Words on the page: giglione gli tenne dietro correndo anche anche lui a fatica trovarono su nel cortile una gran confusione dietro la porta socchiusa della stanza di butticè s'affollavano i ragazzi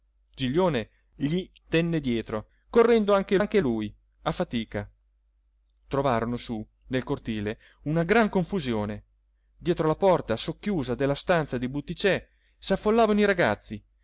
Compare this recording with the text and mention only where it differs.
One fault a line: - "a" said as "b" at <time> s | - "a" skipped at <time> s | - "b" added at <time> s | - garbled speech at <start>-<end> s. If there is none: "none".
none